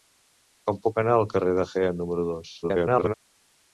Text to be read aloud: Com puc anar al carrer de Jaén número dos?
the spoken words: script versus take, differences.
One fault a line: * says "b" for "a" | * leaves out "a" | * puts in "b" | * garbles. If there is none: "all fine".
* garbles